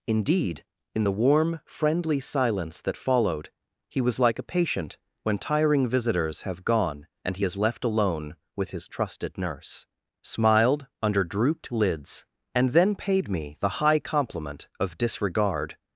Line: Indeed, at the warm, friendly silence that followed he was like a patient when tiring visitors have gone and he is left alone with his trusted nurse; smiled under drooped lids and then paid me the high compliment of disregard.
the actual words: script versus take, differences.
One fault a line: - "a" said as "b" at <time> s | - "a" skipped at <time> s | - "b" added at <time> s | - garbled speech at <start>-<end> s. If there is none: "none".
- "at" said as "in" at 0.9 s